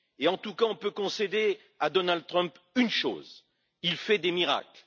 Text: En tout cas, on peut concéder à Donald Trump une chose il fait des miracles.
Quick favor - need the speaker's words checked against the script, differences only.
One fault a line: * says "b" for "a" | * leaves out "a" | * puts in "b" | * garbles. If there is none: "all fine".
all fine